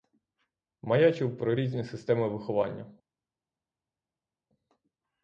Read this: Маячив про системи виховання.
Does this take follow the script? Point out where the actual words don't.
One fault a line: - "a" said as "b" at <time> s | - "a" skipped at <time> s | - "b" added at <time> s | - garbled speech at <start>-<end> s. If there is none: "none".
- "різні" added at 1.5 s